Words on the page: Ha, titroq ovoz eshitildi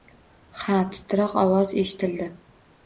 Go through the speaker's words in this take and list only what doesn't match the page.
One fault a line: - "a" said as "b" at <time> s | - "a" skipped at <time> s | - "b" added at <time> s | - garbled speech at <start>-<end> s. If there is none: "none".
none